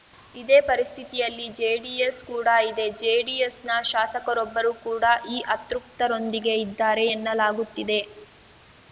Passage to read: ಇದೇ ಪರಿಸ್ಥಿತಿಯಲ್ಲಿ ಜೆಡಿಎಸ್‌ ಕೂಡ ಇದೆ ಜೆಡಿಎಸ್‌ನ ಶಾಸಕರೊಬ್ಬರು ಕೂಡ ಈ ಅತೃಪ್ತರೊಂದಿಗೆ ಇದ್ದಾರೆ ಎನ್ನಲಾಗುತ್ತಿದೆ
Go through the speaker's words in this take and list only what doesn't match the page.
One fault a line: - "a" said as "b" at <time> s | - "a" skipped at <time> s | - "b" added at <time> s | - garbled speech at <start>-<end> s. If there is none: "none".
none